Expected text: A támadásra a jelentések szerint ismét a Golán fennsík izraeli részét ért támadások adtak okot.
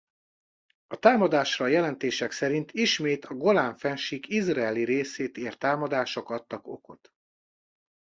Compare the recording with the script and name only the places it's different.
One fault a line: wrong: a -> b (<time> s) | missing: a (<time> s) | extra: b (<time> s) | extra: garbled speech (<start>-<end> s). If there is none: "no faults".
no faults